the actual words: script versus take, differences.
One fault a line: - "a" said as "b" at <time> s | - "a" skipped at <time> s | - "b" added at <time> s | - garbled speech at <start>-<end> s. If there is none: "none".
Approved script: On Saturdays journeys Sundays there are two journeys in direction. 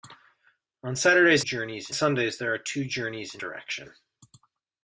none